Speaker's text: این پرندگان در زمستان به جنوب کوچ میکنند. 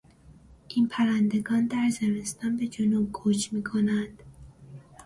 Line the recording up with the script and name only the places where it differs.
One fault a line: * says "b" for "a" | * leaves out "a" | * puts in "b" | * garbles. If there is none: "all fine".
all fine